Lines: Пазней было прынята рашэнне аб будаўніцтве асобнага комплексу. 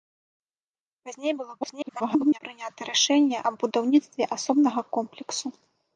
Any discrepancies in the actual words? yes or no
yes